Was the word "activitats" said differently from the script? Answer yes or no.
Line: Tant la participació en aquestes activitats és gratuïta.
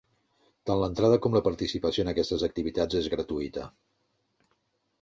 no